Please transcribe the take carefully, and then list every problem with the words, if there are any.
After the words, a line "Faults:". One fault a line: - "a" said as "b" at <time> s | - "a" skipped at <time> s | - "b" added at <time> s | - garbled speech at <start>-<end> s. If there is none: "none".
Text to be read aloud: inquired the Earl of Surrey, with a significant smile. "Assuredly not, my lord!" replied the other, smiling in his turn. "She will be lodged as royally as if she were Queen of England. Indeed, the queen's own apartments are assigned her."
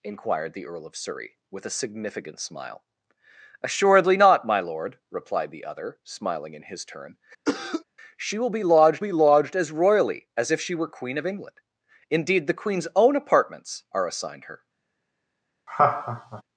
inquired the Earl of Surrey, with a significant smile. "Assuredly not, my lord!" replied the other, smiling in his turn. "She will be lodged be lodged as royally as if she were Queen of England. Indeed, the queen's own apartments are assigned her."
Faults:
- "be lodged" added at 9.0 s